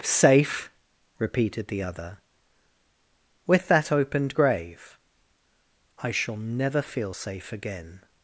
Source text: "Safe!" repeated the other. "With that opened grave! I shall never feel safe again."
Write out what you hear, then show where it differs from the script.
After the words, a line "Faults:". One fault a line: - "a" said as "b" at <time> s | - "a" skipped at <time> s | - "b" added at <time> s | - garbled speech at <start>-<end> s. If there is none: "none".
"Safe!" repeated the other. "With that opened grave! I shall never feel safe again."
Faults:
none